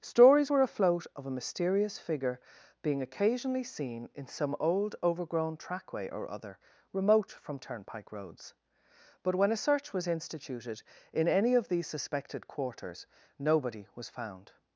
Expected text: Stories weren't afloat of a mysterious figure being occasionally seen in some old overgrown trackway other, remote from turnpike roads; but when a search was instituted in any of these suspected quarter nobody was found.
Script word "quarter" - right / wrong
wrong